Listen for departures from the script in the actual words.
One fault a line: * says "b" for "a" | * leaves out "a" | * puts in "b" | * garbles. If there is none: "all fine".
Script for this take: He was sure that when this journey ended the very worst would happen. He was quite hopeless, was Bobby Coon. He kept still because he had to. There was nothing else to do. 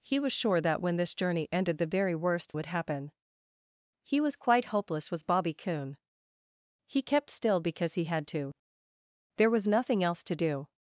all fine